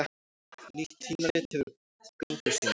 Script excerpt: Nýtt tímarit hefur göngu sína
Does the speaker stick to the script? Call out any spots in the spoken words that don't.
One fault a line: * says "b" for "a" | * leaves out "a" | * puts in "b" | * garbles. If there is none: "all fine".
all fine